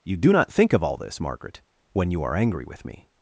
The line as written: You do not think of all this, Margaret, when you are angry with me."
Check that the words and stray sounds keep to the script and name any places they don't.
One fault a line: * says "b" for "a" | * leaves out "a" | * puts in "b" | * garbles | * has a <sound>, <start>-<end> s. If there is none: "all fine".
all fine